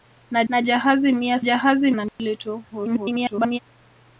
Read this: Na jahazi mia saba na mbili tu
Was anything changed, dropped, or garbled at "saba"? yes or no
yes